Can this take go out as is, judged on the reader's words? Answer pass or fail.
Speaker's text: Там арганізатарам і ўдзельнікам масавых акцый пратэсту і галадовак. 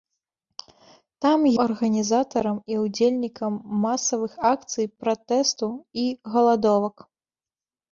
pass